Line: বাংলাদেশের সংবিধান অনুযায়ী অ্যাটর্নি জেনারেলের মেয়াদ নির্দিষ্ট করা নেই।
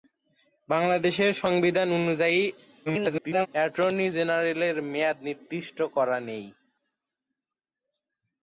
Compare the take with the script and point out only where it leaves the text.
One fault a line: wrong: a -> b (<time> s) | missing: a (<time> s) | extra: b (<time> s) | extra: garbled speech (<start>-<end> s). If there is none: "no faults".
extra: garbled speech (2.9-3.5 s)